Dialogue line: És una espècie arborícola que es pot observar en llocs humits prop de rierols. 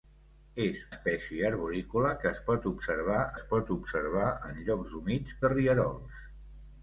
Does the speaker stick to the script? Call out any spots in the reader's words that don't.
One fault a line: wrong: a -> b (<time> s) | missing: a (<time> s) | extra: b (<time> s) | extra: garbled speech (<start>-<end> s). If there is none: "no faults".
missing: una (0.8 s)
extra: es pot observar (3.3 s)
missing: prop (5.4 s)